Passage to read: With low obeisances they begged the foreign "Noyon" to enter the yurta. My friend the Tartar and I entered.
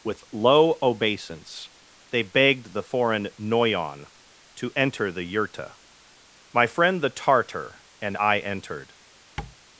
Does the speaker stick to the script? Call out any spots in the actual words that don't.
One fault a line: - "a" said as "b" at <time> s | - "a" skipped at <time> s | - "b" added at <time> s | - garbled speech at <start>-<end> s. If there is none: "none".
- "obeisances" said as "obeisance" at 0.8 s